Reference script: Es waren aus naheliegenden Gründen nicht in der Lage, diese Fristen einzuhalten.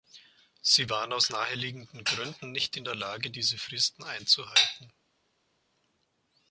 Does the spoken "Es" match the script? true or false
false